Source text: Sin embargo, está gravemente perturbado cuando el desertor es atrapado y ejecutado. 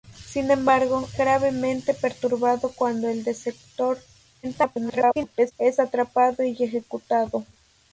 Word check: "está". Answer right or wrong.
wrong